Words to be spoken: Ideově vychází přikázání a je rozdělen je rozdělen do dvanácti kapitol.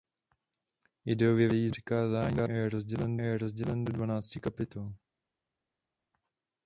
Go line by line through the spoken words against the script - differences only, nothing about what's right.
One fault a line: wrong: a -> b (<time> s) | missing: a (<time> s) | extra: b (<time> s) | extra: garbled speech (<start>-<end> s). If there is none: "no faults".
no faults